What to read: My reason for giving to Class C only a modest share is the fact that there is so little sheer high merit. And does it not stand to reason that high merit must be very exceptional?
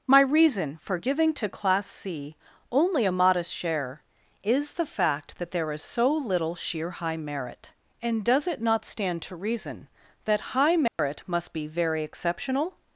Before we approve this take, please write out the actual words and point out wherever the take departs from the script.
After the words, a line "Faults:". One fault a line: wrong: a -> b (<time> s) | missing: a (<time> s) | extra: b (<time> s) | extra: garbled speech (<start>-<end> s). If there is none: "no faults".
My reason for giving to Class C only a modest share is the fact that there is so little sheer high merit. And does it not stand to reason that high merit must be very exceptional?
Faults:
no faults